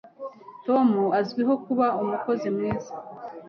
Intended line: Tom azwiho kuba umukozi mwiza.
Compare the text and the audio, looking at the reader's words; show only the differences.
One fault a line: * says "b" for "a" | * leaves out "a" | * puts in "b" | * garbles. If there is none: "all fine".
all fine